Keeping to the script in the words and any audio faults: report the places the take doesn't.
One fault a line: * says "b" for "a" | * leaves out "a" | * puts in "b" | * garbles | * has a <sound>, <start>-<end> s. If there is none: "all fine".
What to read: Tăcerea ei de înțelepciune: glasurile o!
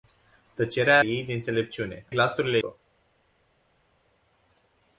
all fine